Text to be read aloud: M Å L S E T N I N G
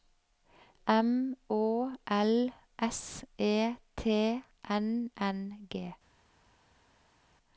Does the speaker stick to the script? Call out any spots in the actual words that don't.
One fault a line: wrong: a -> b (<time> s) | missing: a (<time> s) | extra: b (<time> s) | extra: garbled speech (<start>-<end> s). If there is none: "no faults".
missing: I (5.1 s)